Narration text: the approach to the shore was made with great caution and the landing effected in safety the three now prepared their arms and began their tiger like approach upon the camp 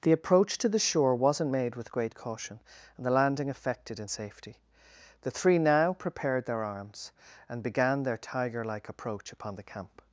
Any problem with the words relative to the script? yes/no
yes